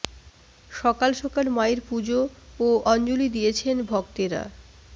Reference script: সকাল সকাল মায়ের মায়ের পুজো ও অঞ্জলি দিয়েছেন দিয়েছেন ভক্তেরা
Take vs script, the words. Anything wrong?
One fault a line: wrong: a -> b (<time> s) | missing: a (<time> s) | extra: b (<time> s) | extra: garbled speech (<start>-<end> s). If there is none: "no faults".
missing: মায়ের (1.8 s)
missing: দিয়েছেন (3.8 s)